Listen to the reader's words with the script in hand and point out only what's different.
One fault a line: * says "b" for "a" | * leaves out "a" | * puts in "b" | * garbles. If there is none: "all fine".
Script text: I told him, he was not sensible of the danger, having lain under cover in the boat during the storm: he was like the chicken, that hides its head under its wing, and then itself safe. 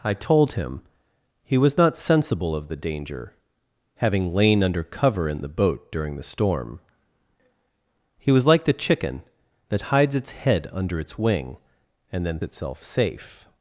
all fine